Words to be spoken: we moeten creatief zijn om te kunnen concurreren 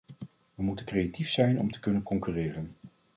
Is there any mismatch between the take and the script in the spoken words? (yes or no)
no